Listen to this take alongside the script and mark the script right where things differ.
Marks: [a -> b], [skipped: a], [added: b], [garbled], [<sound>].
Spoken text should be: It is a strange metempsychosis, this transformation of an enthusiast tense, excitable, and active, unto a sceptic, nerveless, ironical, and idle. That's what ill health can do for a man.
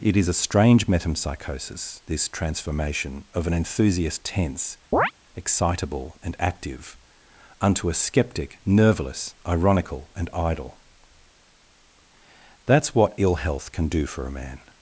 It is a strange metempsychosis, this transformation of an enthusiast tense, [chirp] excitable, and active, unto a sceptic, nerveless, ironical, and idle. That's what ill health can do for a man.